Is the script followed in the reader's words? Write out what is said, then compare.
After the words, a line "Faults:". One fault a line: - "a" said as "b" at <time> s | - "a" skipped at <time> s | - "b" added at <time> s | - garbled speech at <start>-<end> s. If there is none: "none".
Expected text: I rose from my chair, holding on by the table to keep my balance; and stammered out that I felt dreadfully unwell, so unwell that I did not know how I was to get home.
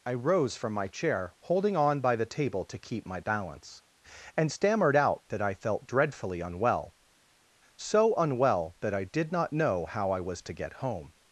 I rose from my chair, holding on by the table to keep my balance; and stammered out that I felt dreadfully unwell, so unwell that I did not know how I was to get home.
Faults:
none